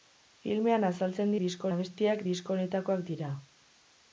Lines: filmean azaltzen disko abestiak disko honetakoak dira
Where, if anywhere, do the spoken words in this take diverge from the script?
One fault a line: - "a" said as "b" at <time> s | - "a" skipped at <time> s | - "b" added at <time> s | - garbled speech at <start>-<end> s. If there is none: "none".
none